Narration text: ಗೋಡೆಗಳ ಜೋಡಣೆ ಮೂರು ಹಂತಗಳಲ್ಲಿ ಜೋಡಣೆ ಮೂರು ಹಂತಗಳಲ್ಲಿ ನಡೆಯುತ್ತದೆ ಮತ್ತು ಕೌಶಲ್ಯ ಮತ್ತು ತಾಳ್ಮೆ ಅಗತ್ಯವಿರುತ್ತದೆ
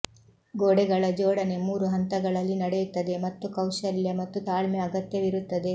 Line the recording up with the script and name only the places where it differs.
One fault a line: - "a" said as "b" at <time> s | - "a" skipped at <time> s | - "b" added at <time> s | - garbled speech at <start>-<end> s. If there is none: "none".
- "ಜೋಡಣೆ ಮೂರು ಹಂತಗಳಲ್ಲಿ" skipped at 2.5 s